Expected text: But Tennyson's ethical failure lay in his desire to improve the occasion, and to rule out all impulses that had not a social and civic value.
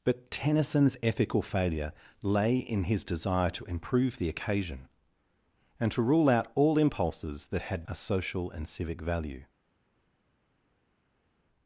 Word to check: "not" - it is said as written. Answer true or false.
false